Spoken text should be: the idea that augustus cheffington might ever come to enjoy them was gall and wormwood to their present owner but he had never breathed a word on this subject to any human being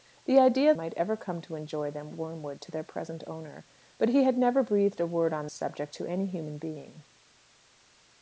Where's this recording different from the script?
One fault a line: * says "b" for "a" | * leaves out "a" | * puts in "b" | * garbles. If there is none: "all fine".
* leaves out "that augustus cheffington"
* leaves out "was gall and"
* leaves out "this"